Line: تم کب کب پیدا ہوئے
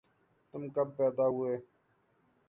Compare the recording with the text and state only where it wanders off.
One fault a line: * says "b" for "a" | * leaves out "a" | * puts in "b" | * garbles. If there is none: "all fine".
* leaves out "کب"